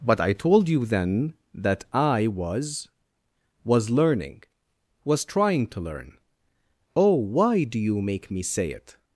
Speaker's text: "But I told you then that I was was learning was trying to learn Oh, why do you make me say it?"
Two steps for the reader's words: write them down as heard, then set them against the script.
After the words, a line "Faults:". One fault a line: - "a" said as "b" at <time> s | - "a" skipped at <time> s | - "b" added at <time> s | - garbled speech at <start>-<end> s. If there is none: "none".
"But I told you then that I was was learning was trying to learn Oh, why do you make me say it?"
Faults:
none